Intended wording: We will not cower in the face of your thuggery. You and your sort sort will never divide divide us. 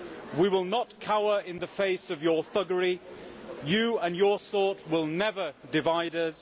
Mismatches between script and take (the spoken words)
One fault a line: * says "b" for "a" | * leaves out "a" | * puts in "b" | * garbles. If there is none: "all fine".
* leaves out "sort"
* leaves out "divide"